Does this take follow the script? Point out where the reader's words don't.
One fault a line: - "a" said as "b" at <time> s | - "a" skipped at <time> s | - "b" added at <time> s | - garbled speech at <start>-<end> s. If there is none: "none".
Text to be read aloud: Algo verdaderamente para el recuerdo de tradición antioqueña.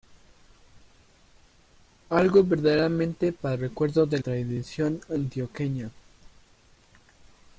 none